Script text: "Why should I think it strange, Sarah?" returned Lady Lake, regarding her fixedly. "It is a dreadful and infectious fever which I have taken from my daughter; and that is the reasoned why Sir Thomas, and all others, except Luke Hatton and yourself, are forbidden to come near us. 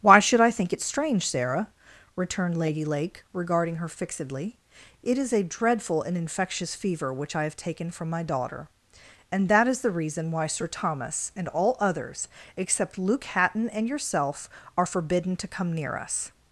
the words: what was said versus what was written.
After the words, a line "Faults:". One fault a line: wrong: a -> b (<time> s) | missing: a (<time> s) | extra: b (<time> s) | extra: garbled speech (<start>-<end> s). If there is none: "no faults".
"Why should I think it strange, Sarah?" returned Lady Lake, regarding her fixedly. "It is a dreadful and infectious fever which I have taken from my daughter; and that is the reason why Sir Thomas, and all others, except Luke Hatton and yourself, are forbidden to come near us.
Faults:
wrong: reasoned -> reason (9.9 s)